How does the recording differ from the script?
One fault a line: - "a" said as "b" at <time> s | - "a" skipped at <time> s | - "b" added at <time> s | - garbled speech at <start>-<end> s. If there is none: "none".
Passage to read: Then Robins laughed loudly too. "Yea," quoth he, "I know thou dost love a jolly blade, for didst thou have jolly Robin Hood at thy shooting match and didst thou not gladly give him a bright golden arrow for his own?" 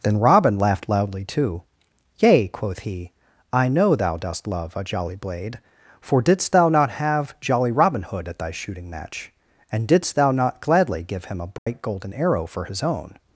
- "Robins" said as "Robin" at 0.2 s
- "not" added at 6.7 s